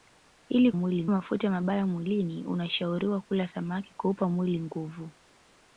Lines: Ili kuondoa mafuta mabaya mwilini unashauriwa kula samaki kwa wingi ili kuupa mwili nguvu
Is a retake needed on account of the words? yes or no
yes